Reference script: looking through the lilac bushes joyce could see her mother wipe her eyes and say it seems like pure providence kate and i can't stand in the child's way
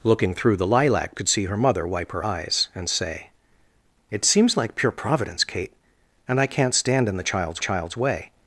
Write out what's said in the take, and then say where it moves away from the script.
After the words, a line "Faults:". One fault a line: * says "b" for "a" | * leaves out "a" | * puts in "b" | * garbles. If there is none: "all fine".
looking through the lilac could see her mother wipe her eyes and say it seems like pure providence kate and i can't stand in the child's child's way
Faults:
* leaves out "bushes joyce"
* puts in "child's"